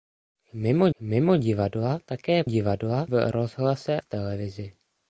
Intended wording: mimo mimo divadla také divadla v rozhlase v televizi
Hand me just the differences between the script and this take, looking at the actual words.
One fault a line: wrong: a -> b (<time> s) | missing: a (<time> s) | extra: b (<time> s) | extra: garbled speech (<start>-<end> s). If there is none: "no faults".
no faults